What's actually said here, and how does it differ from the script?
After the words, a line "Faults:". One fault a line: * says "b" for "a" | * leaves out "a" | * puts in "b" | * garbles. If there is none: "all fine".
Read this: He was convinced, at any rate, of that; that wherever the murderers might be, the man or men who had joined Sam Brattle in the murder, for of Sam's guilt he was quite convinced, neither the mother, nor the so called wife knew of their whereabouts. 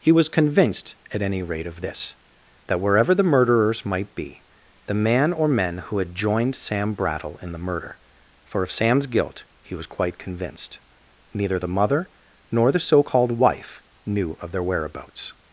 He was convinced, at any rate, of this; that wherever the murderers might be, the man or men who had joined Sam Brattle in the murder, for of Sam's guilt he was quite convinced, neither the mother, nor the so called wife knew of their whereabouts.
Faults:
* says "this" for "that"